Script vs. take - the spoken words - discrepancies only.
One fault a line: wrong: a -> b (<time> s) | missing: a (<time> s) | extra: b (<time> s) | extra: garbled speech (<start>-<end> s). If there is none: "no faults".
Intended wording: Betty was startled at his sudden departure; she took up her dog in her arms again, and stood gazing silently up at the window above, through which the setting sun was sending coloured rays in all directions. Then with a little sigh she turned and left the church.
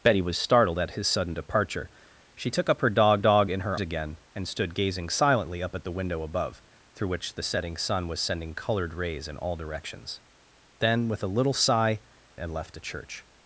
extra: dog (3.2 s)
missing: arms (3.8 s)
missing: she turned (12.0 s)